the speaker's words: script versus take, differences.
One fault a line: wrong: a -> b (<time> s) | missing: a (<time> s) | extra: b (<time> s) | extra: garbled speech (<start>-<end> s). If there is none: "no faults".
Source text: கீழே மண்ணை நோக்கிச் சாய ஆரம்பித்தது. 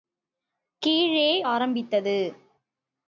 missing: மண்ணை நோக்கிச் சாய (1.3 s)